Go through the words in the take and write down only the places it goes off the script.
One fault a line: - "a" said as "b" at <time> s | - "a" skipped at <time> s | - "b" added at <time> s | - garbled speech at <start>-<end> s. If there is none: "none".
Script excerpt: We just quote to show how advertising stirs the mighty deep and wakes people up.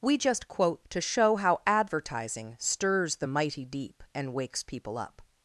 none